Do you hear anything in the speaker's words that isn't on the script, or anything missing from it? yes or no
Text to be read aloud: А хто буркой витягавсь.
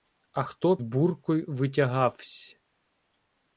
no